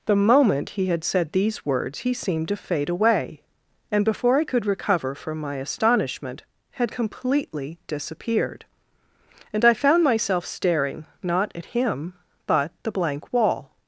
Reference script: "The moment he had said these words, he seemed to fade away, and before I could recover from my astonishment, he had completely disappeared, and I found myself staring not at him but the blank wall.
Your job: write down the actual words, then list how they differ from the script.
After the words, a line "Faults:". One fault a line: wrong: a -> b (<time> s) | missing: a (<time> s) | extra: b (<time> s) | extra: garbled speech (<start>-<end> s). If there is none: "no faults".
"The moment he had said these words, he seemed to fade away, and before I could recover from my astonishment, had completely disappeared, and I found myself staring not at him but the blank wall.
Faults:
missing: he (6.4 s)